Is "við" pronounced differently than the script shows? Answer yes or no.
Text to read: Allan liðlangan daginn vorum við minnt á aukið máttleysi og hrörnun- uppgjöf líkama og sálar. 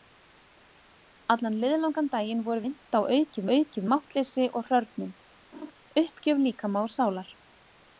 yes